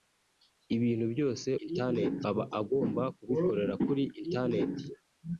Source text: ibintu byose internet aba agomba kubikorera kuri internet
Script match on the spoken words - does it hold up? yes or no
yes